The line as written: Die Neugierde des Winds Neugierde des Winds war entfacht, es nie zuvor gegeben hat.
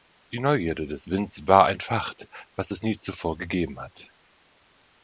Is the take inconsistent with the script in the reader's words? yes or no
yes